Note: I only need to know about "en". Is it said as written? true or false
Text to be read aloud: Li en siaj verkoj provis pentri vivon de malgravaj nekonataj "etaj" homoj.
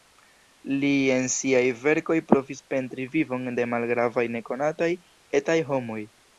true